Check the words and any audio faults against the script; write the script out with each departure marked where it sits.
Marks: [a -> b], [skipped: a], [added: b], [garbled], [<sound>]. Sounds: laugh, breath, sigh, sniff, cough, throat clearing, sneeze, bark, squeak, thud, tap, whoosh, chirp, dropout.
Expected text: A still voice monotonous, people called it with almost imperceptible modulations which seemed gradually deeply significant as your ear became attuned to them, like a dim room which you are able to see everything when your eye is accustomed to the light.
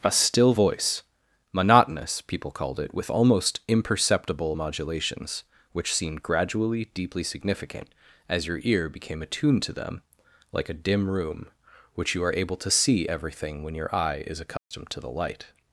A still voice monotonous, people called it with almost imperceptible modulations which seemed gradually deeply significant as your ear became attuned to them, like a dim room which you are able to see everything when your eye is accustomed [dropout] to the light.